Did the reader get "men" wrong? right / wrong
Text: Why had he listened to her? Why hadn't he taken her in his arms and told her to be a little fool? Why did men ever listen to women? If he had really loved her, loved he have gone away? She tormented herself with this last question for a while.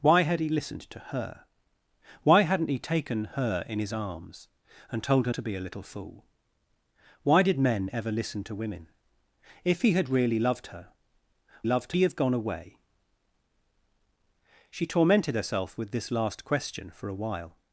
right